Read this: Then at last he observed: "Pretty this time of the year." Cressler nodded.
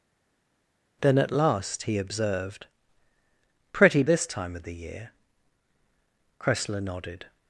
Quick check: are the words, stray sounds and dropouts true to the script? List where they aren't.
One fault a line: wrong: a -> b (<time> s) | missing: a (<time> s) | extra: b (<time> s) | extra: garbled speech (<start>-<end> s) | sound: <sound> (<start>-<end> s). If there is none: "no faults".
no faults